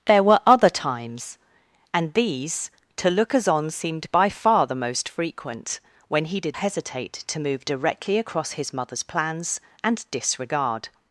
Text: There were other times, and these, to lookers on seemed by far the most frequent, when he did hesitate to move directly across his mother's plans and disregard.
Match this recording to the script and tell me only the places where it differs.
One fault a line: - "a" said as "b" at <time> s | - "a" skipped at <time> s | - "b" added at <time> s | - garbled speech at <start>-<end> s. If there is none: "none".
none